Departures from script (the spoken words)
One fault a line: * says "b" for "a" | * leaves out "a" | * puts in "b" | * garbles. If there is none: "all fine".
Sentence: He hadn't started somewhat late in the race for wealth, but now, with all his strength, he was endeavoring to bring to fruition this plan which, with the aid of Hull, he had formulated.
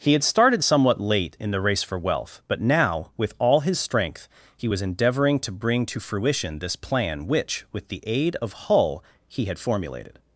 * says "had" for "hadn't"